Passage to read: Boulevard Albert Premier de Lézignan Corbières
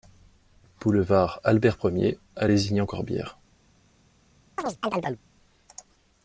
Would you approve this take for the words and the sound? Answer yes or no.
no